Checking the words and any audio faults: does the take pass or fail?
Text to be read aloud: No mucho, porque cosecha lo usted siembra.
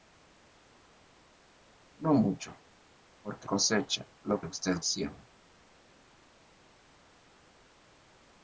pass